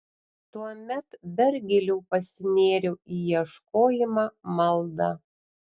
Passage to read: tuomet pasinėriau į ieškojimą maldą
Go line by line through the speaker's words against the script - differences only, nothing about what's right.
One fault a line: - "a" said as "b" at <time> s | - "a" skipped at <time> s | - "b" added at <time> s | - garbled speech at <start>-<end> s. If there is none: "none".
- "dar giliau" added at 1.4 s